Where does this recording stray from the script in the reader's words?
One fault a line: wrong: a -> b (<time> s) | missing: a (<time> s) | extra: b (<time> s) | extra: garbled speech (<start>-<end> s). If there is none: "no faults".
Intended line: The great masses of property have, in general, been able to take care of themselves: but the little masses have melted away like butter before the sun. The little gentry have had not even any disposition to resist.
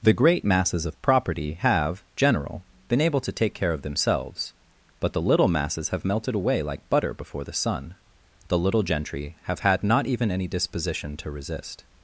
missing: in (2.0 s)